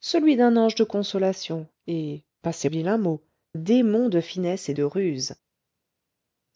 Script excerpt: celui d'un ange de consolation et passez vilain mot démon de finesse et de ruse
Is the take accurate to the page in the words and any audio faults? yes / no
yes